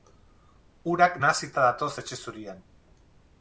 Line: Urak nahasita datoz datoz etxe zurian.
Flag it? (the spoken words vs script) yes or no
yes